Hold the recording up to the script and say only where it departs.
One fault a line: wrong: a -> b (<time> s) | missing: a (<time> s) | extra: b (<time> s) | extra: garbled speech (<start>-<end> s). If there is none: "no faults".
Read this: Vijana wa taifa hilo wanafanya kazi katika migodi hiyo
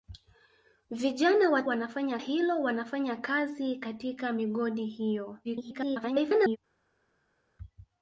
wrong: taifa -> wanafanya (1.6 s)
extra: garbled speech (5.4-6.6 s)